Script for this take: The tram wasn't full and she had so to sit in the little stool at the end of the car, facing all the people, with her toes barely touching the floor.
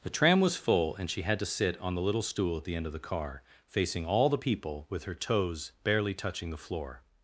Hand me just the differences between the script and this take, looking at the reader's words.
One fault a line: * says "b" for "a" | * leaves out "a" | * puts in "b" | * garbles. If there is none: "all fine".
* says "was" for "wasn't"
* leaves out "so"
* says "on" for "in"